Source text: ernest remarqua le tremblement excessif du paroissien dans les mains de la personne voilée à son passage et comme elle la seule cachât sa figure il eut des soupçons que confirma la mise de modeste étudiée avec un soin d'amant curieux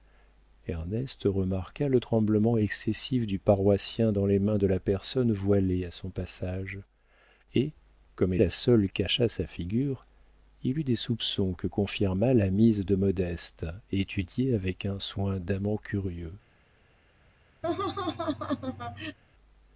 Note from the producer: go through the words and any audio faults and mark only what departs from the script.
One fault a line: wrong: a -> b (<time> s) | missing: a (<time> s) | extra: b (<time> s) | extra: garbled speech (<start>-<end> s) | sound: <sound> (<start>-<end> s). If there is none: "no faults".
sound: laugh (17.6-19.2 s)